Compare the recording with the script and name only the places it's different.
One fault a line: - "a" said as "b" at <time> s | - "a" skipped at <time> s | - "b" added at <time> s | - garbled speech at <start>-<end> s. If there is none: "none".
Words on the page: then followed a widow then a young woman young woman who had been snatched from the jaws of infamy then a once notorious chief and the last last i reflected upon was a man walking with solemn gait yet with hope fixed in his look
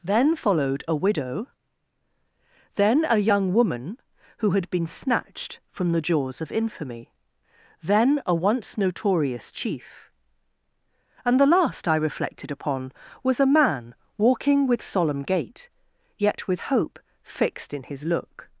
- "young woman" skipped at 4.0 s
- "last" skipped at 11.9 s